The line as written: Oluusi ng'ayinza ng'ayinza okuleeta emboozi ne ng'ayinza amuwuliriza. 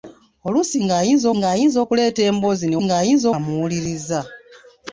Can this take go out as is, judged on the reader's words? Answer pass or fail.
pass